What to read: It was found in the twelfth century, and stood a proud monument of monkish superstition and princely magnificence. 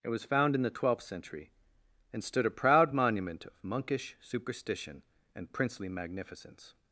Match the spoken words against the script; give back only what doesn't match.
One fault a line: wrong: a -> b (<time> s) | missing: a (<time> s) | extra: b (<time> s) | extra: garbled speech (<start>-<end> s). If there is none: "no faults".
no faults